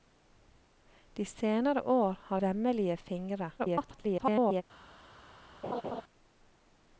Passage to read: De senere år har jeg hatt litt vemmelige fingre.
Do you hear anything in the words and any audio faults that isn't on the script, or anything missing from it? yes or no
yes